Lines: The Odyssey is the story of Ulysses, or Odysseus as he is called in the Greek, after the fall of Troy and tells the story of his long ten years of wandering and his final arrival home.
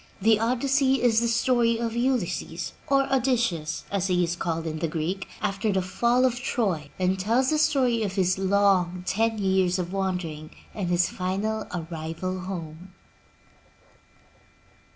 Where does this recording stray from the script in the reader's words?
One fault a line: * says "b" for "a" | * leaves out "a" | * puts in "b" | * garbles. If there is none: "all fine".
all fine